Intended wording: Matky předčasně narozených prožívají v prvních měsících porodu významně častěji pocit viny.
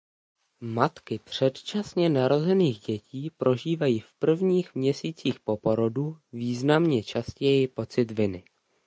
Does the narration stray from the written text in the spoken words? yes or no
yes